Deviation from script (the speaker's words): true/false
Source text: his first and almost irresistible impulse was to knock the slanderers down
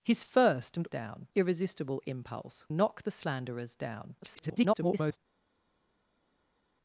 true